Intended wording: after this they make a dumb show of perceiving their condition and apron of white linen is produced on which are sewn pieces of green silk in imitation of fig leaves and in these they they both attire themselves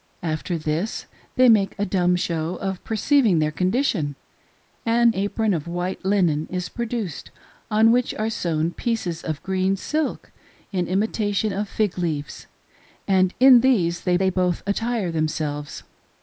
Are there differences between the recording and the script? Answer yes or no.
no